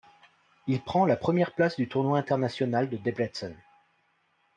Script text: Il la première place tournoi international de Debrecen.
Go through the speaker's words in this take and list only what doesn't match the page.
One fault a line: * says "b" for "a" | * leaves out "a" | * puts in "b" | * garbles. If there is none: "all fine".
* puts in "prend"
* puts in "du"